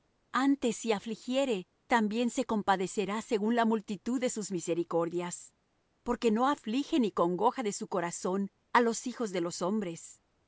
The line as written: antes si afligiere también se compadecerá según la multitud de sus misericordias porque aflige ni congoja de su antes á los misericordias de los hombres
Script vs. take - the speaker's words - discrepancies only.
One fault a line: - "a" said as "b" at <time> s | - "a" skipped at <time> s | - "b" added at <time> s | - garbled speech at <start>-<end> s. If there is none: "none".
- "no" added at 6.3 s
- "antes" said as "corazón" at 7.9 s
- "misericordias" said as "hijos" at 9.1 s